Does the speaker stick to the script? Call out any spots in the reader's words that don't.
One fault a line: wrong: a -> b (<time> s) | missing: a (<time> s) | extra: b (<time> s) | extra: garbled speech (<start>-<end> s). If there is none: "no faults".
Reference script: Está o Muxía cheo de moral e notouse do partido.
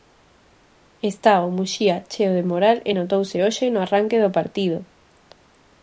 extra: hoxe no arranque (3.4 s)